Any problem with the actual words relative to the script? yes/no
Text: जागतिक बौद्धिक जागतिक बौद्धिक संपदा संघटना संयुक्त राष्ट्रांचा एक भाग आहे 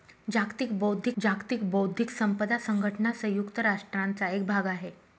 no